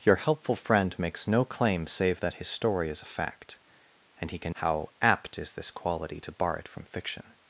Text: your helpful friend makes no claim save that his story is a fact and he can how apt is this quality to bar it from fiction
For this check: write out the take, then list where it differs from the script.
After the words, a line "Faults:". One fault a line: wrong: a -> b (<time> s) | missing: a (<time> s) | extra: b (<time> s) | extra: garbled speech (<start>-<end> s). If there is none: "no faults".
your helpful friend makes no claim save that his story is a fact and he can how apt is this quality to bar it from fiction
Faults:
no faults